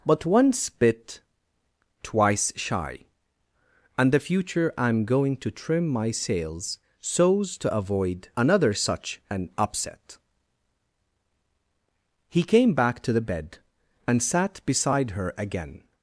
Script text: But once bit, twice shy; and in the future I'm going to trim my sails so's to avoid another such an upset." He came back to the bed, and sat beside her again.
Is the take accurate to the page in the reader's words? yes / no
no